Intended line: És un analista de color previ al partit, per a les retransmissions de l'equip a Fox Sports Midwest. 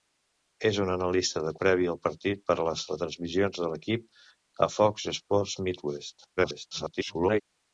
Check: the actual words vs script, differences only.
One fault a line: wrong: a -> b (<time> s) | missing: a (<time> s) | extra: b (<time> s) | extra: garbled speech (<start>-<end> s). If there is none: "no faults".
missing: color (1.5 s)
extra: garbled speech (6.4-7.4 s)